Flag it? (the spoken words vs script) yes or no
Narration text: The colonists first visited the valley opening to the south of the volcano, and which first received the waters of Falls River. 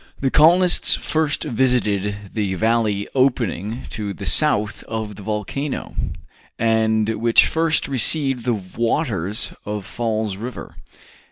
no